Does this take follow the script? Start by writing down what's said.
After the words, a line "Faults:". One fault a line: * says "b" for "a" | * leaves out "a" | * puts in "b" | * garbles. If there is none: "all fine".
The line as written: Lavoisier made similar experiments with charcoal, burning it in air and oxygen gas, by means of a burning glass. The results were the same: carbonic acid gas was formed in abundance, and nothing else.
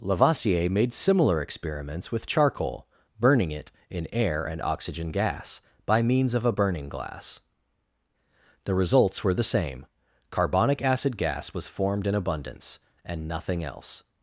Lavoisier made similar experiments with charcoal, burning it in air and oxygen gas, by means of a burning glass. The results were the same: carbonic acid gas was formed in abundance, and nothing else.
Faults:
all fine